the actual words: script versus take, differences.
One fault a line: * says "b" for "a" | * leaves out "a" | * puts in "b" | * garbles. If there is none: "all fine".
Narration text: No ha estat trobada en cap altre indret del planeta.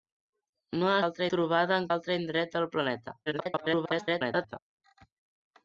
* says "altre" for "estat"
* leaves out "cap"
* garbles